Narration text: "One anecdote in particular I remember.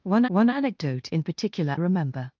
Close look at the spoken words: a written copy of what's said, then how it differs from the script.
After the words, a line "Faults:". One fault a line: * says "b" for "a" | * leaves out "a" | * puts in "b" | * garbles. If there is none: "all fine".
"One one anecdote in particular remember.
Faults:
* puts in "one"
* leaves out "I"